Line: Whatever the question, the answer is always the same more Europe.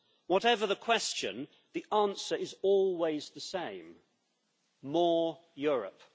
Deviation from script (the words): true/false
false